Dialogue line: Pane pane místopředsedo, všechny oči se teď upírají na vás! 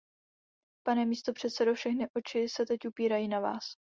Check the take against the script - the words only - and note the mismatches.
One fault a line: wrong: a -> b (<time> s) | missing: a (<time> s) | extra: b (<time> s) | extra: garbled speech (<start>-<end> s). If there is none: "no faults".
missing: pane (1.1 s)